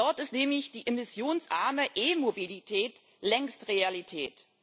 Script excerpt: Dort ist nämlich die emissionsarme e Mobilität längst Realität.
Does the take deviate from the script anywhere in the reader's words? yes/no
no